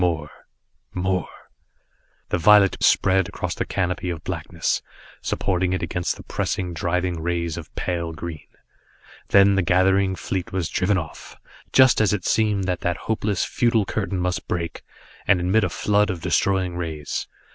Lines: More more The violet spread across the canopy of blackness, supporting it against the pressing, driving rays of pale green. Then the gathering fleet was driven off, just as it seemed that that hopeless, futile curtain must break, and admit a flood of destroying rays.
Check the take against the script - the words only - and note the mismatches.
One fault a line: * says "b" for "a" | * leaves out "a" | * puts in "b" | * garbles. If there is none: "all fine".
all fine